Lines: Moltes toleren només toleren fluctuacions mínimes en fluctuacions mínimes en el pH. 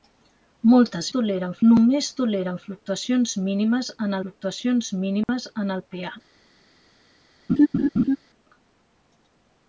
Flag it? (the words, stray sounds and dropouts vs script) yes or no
yes